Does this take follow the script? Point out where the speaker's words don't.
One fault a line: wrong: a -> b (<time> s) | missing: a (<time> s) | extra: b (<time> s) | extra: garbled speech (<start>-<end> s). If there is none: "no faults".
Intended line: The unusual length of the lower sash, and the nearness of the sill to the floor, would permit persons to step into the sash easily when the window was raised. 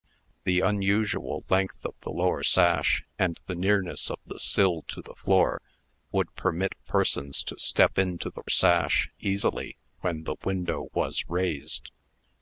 no faults